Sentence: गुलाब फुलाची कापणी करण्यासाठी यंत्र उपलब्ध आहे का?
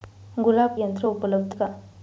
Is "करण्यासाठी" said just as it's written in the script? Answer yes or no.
no